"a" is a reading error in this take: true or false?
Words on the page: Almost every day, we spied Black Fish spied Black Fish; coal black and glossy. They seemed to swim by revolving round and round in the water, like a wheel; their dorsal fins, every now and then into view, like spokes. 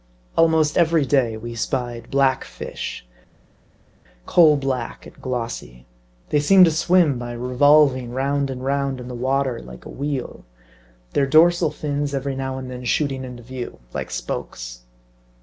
false